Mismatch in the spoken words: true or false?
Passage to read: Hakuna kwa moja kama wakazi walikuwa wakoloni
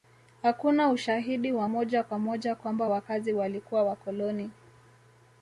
true